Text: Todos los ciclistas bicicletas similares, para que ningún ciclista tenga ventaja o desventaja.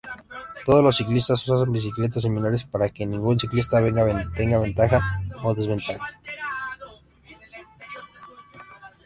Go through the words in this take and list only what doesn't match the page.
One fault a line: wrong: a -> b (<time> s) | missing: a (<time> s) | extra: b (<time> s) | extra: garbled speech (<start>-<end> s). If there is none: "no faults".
extra: usan (1.5 s)